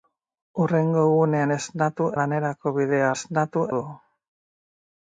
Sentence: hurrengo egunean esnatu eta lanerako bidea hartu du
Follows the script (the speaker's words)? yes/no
no